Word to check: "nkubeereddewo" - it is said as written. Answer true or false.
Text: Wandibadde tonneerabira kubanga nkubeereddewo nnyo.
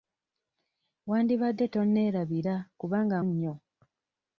false